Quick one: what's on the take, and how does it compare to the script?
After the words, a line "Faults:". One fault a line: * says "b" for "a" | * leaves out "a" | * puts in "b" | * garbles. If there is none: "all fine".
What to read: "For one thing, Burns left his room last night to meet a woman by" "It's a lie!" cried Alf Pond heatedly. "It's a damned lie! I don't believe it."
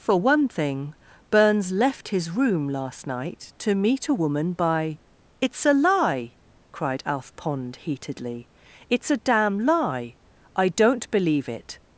"For one thing, Burns left his room last night to meet a woman by" "It's a lie!" cried Alf Pond heatedly. "It's a damn lie! I don't believe it."
Faults:
* says "damn" for "damned"